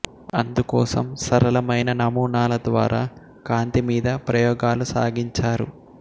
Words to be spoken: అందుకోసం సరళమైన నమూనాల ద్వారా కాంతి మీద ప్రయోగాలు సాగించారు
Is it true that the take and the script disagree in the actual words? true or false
false